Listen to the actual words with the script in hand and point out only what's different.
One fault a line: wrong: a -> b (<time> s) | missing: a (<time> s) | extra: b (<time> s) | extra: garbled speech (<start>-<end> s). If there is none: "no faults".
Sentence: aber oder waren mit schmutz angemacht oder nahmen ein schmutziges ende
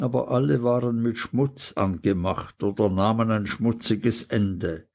wrong: oder -> alle (0.3 s)